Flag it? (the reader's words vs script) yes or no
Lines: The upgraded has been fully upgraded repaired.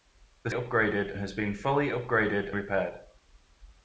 no